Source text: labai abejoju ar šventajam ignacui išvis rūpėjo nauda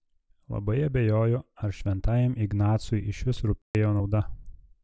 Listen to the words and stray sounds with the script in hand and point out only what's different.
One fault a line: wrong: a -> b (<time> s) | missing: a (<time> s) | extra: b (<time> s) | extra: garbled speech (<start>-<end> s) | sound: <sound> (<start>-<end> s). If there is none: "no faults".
sound: dropout (3.6-3.7 s)